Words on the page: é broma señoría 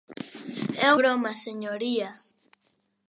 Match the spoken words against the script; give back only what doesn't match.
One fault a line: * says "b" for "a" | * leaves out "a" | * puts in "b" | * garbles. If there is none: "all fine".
all fine